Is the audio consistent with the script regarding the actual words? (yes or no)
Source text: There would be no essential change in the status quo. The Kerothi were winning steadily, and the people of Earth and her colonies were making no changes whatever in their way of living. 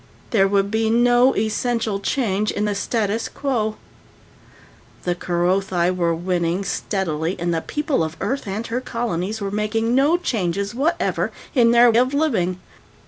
no